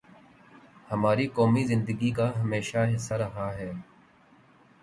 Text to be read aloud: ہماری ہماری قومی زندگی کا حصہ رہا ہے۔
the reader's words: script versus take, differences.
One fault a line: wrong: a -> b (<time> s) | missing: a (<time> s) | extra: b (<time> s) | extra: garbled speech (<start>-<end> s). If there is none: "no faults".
missing: ہماری (1.3 s)
extra: ہمیشہ (2.4 s)